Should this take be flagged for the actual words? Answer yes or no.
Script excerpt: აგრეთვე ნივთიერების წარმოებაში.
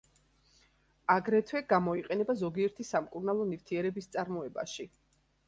yes